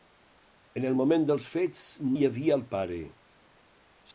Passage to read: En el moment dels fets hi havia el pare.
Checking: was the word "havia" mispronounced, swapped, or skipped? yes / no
no